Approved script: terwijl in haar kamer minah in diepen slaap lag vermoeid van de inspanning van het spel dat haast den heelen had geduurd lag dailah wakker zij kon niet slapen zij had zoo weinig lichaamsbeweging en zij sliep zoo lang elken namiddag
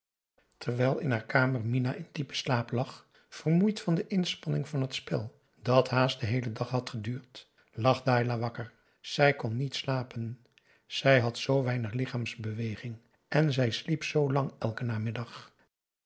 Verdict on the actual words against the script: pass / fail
fail